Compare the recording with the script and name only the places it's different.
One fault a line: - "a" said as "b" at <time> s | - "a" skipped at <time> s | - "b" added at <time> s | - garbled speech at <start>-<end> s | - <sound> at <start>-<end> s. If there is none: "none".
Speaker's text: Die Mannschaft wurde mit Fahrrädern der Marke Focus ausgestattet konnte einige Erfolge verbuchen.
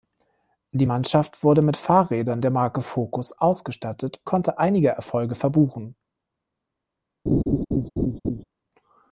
- laugh at 7.3-8.4 s